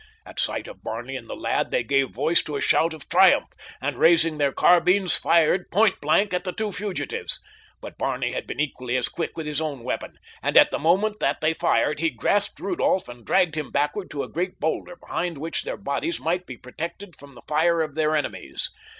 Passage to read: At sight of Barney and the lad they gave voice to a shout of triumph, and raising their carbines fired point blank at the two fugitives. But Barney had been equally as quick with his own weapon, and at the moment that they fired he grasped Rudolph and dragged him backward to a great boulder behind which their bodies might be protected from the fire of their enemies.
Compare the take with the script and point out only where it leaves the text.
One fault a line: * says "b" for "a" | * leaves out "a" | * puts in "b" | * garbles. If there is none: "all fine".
all fine